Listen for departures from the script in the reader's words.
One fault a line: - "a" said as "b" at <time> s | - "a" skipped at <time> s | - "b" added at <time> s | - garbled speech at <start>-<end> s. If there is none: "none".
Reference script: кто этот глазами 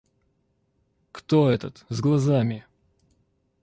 - "с" added at 1.9 s